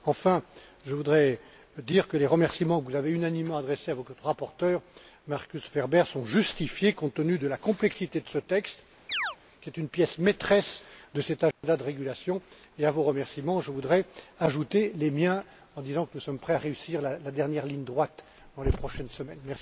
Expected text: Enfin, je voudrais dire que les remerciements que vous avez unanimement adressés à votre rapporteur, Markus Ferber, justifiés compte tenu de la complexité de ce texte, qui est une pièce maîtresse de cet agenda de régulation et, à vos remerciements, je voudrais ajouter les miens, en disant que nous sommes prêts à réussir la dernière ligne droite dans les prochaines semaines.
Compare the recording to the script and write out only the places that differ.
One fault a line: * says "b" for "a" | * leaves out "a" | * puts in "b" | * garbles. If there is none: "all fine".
* puts in "sont"